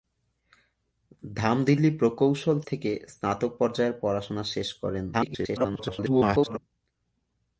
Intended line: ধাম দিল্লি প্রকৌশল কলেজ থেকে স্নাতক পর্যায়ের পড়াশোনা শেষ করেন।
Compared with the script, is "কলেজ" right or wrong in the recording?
wrong